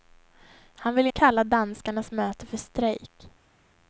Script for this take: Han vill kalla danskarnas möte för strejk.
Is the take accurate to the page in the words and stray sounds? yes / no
yes